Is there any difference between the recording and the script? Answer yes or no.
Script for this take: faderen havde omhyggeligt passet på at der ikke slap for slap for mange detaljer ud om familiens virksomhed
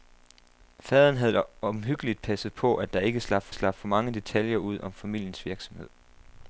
no